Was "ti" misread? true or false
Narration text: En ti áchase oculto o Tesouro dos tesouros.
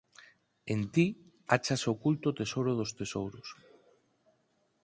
false